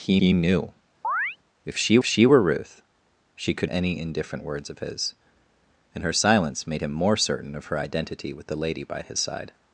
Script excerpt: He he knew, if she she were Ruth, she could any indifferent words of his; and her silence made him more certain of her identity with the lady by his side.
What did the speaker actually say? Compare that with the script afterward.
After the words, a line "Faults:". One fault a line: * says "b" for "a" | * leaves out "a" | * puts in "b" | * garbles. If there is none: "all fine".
He he knew, if she she were Ruth, she could any indifferent words of his; and her silence made him more certain of her identity with the lady by his side.
Faults:
all fine